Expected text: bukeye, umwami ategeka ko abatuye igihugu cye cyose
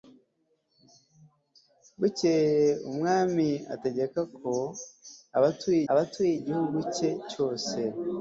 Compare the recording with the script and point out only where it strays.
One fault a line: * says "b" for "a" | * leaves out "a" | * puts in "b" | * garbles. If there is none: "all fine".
* puts in "abatuye"